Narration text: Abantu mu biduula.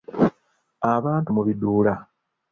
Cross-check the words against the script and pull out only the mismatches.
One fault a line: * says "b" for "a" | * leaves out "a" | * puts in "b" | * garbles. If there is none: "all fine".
all fine